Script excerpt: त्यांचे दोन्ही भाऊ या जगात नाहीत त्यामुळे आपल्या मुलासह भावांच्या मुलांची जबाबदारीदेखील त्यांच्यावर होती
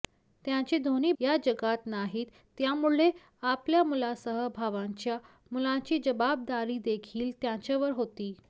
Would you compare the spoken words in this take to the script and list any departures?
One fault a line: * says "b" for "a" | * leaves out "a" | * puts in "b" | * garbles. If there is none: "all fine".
* leaves out "भाऊ"